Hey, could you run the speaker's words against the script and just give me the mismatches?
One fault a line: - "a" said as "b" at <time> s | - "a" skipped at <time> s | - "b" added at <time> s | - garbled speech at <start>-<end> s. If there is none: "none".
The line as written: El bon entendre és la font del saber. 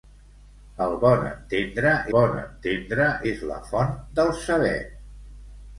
- "bon entendre" added at 2.1 s